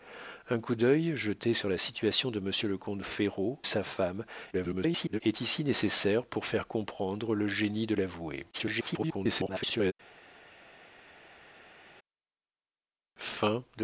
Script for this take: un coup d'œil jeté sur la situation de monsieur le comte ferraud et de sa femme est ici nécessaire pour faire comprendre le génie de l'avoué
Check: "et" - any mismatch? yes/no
yes